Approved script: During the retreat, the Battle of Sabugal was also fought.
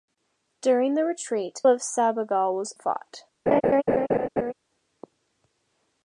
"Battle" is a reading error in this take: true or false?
true